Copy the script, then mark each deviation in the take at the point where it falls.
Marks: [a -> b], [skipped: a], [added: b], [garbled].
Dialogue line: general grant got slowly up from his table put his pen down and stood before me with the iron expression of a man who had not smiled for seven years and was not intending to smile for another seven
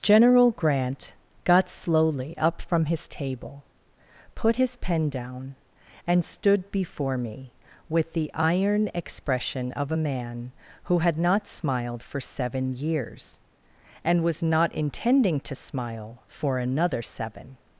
general grant got slowly up from his table put his pen down and stood before me with the iron expression of a man who had not smiled for seven years and was not intending to smile for another seven